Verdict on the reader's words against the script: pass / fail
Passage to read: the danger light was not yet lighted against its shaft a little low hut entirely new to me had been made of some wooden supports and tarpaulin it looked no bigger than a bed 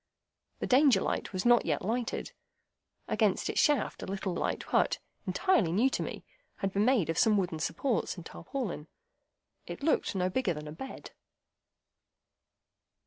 fail